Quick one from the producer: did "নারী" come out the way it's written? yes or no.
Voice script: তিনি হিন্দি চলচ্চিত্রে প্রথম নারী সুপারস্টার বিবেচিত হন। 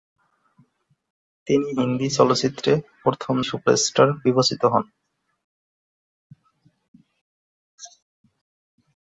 no